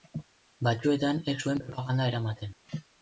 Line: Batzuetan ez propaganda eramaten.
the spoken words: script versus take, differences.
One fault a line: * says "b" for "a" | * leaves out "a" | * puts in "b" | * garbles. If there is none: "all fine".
* puts in "zuen"